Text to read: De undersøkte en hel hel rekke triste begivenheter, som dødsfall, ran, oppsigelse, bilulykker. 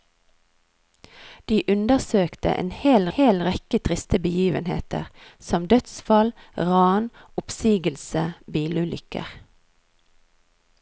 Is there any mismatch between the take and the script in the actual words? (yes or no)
no